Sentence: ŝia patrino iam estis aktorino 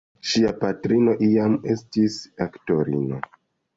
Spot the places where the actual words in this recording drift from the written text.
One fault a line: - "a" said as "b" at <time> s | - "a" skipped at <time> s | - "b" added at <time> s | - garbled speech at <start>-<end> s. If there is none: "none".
none